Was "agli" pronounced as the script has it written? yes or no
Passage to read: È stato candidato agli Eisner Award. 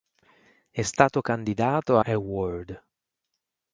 no